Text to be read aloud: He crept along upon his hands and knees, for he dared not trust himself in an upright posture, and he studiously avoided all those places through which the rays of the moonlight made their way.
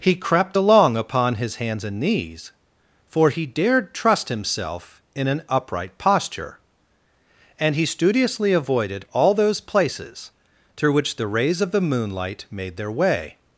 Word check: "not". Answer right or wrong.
wrong